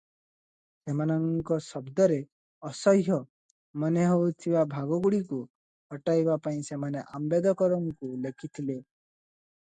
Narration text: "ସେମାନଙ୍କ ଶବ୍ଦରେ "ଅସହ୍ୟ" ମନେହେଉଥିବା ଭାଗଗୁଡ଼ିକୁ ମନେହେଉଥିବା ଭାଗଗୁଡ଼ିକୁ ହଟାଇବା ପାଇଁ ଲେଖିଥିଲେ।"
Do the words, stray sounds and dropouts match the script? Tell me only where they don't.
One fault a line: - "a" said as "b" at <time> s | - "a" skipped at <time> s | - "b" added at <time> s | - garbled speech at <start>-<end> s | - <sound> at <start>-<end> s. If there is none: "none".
- "ମନେହେଉଥିବା ଭାଗଗୁଡ଼ିକୁ ହଟାଇବା ପାଇଁ" said as "ହଟାଇବା ପାଇଁ ସେମାନେ ଆମ୍ବେଦକରଙ୍କୁ" at 5.9 s